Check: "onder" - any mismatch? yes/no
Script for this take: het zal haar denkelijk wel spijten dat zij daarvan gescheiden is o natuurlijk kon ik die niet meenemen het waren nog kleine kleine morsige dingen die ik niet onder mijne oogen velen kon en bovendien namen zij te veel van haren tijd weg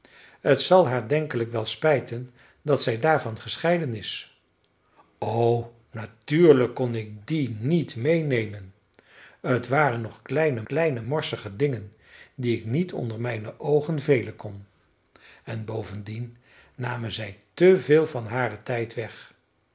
no